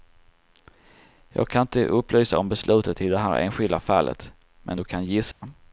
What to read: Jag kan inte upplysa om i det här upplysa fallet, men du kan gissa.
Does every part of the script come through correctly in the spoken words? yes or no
no